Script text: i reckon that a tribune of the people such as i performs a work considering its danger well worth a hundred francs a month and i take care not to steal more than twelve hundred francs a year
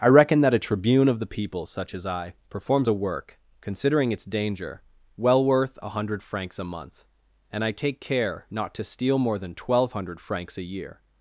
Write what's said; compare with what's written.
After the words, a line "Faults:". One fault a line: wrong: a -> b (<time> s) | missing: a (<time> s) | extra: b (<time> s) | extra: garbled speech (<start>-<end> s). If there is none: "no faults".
i reckon that a tribune of the people such as i performs a work considering its danger well worth a hundred francs a month and i take care not to steal more than twelve hundred francs a year
Faults:
no faults